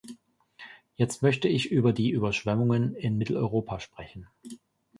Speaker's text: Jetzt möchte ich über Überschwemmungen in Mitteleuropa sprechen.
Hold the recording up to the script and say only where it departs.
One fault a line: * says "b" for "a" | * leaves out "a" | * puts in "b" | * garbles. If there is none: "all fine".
* puts in "die"